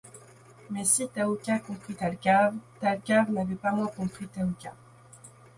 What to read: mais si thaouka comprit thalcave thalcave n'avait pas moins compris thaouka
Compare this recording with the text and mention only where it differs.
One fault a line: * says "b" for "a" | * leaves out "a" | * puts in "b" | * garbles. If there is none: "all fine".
all fine